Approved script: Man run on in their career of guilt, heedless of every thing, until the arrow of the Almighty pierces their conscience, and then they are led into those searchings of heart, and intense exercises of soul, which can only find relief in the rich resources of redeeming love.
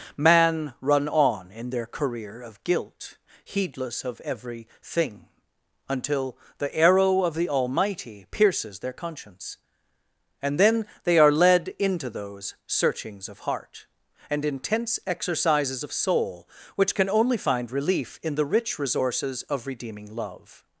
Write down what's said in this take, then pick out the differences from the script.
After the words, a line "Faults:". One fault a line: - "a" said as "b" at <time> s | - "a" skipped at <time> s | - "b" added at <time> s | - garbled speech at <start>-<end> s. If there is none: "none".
Man run on in their career of guilt, heedless of every thing, until the arrow of the Almighty pierces their conscience, and then they are led into those searchings of heart, and intense exercises of soul, which can only find relief in the rich resources of redeeming love.
Faults:
none